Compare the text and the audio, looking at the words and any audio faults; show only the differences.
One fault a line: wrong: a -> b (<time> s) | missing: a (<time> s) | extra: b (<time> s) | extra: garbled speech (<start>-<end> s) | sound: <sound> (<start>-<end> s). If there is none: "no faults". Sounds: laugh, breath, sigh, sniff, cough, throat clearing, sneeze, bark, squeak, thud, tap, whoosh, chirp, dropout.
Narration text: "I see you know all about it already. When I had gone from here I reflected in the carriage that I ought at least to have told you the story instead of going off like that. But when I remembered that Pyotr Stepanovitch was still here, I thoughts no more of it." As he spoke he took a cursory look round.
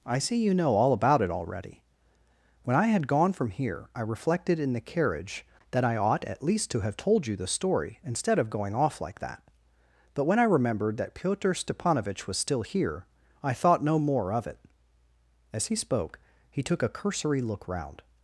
wrong: thoughts -> thought (13.5 s)